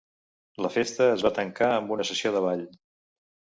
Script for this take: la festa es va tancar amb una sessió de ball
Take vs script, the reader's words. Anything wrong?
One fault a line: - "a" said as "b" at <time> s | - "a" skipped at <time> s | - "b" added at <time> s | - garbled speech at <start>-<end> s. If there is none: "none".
none